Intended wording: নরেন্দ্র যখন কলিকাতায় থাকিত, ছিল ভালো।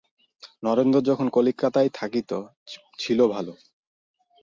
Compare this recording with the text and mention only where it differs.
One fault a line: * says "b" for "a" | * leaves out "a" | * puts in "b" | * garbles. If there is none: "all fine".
all fine